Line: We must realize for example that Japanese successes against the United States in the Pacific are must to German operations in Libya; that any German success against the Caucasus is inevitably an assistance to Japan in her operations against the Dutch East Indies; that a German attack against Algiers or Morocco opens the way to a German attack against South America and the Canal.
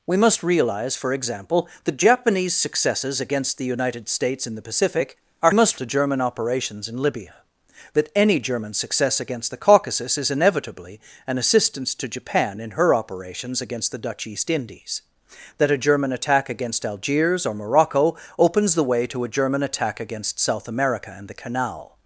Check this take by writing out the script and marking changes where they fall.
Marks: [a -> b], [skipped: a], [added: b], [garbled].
We must realize for example that Japanese successes against the United States in the Pacific are must to German operations in Libya; that any German success against the Caucasus is inevitably an assistance to Japan in her operations against the Dutch East Indies; that a German attack against Algiers or Morocco opens the way to a German attack against South America and the Canal.